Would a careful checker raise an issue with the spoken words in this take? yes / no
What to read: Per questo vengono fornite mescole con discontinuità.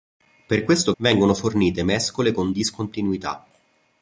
no